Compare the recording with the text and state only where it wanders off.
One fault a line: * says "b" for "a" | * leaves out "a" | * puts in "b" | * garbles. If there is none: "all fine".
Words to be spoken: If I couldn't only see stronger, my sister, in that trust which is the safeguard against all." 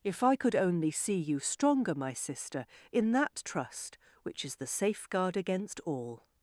* says "could" for "couldn't"
* puts in "you"